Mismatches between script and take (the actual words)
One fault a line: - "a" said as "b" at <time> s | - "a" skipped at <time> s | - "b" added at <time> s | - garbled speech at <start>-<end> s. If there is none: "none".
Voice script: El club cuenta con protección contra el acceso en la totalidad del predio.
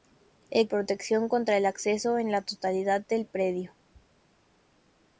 - "club cuenta con" skipped at 0.7 s